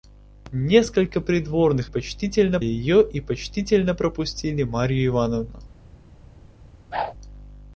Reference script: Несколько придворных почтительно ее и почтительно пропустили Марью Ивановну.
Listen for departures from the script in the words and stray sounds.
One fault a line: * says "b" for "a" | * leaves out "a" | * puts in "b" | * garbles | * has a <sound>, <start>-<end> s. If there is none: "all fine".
* has a whoosh, 6.9-7.1 s